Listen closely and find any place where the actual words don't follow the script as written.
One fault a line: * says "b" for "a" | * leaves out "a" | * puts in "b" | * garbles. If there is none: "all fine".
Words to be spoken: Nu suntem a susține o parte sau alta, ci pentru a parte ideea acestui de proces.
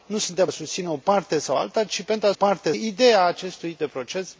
all fine